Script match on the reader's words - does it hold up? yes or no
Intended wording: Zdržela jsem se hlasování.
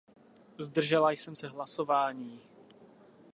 yes